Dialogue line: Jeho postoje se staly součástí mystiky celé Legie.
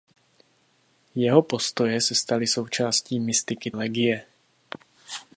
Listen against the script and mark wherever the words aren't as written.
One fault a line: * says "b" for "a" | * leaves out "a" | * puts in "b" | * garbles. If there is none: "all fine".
* leaves out "celé"